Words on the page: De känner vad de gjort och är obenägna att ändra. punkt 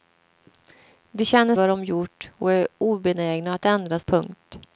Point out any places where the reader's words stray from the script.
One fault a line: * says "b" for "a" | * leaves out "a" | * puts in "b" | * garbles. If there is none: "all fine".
all fine